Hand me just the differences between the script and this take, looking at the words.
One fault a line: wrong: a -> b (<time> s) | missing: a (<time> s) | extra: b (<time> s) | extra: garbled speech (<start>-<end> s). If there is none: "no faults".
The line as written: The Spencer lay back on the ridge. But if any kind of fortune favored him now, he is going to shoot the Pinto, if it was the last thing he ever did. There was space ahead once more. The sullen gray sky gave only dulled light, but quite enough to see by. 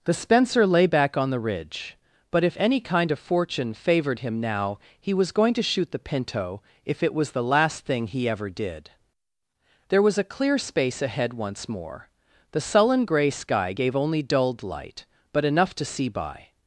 wrong: is -> was (5.1 s)
extra: a clear (10.2 s)
missing: quite (15.5 s)